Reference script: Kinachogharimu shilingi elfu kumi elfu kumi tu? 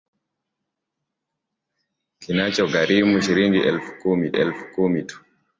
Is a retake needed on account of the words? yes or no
no